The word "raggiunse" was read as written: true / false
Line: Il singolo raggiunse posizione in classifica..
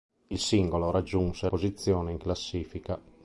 true